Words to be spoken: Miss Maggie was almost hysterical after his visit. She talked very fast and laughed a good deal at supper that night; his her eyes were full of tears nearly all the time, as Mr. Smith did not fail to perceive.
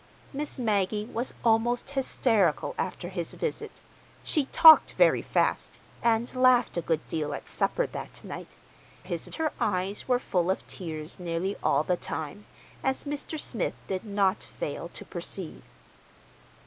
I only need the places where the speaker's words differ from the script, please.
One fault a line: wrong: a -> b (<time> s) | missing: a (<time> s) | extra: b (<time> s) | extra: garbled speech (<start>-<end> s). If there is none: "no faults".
no faults